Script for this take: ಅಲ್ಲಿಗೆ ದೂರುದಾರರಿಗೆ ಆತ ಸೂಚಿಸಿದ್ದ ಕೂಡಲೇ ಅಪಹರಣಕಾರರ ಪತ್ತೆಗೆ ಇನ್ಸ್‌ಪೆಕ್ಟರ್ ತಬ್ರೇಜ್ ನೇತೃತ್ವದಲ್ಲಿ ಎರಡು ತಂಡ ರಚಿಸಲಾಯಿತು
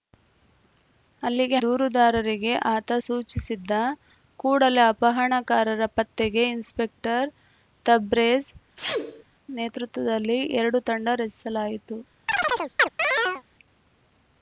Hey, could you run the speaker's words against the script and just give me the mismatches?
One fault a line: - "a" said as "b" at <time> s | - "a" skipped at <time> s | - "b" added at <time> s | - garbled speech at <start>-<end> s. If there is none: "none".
none